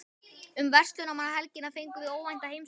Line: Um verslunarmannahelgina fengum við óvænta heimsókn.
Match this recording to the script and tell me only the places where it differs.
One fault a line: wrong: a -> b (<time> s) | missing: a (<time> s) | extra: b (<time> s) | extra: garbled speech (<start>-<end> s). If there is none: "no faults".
no faults